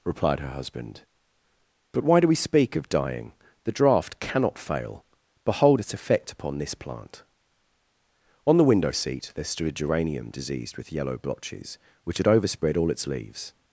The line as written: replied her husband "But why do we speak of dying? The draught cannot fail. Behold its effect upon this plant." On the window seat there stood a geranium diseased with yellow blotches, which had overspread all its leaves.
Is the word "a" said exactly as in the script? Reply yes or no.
yes